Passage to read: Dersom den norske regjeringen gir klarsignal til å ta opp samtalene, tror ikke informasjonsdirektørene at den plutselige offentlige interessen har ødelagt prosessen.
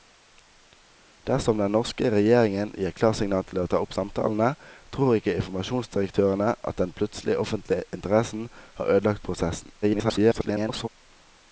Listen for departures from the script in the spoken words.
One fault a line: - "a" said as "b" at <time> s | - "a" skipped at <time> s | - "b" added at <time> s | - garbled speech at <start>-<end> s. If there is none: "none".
- garbled speech at 9.8-10.9 s